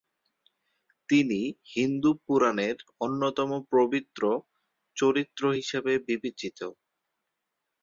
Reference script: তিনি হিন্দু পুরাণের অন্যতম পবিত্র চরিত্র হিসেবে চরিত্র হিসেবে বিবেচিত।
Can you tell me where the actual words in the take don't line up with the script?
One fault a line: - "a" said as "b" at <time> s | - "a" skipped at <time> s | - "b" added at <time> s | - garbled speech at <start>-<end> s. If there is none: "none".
- "চরিত্র হিসেবে" skipped at 5.9 s